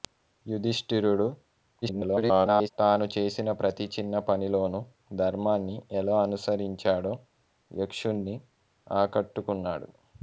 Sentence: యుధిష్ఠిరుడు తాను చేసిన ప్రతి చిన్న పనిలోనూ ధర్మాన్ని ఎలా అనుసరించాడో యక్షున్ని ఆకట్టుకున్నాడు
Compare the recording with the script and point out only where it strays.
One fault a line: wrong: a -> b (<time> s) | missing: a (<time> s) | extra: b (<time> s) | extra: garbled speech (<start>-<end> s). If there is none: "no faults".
extra: garbled speech (1.8-2.7 s)